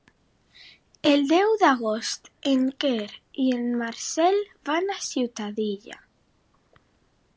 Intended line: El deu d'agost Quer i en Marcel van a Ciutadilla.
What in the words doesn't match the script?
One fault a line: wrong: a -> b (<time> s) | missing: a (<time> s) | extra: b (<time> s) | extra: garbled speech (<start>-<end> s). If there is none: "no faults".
extra: en (2.5 s)